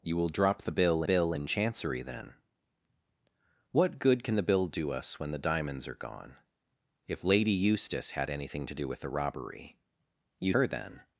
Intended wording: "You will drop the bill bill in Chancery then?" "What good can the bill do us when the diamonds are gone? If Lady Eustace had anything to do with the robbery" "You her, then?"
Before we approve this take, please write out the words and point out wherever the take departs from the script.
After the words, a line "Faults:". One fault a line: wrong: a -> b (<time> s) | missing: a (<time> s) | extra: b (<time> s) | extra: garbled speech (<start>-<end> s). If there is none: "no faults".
"You will drop the bill bill in Chancery then?" "What good can the bill do us when the diamonds are gone? If Lady Eustace had anything to do with the robbery" "You her, then?"
Faults:
no faults